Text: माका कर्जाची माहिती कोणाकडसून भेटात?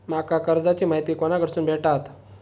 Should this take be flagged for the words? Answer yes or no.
no